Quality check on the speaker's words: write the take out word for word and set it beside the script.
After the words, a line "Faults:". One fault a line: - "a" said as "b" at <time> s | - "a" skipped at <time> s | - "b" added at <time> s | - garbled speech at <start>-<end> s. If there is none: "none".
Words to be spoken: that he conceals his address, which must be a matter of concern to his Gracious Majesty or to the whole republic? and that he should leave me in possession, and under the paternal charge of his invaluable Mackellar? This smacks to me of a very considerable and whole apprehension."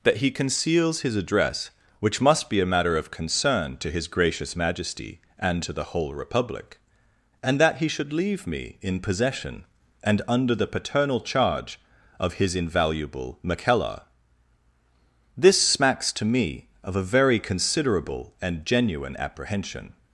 that he conceals his address, which must be a matter of concern to his Gracious Majesty and to the whole republic? and that he should leave me in possession, and under the paternal charge of his invaluable Mackellar? This smacks to me of a very considerable and genuine apprehension."
Faults:
- "or" said as "and" at 5.4 s
- "whole" said as "genuine" at 18.7 s